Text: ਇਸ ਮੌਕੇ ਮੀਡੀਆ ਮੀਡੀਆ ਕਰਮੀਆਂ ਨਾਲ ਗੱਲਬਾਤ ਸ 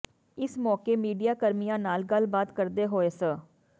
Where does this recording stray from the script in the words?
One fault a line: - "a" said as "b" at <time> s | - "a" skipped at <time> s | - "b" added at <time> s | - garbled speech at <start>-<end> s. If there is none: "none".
- "ਮੀਡੀਆ" skipped at 1.3 s
- "ਕਰਦੇ ਹੋਏ" added at 2.5 s